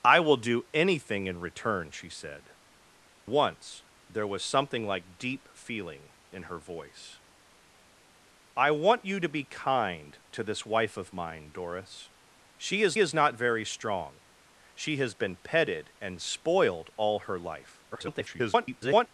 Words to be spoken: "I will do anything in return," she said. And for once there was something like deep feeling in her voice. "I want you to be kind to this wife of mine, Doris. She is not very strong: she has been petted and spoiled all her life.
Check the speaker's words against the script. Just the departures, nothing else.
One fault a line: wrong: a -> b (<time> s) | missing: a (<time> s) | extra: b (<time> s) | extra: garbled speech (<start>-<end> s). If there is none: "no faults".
missing: And for (2.5 s)
extra: is (13.0 s)
extra: garbled speech (17.9-19.1 s)